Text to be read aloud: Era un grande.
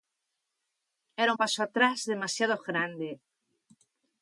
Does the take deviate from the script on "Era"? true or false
false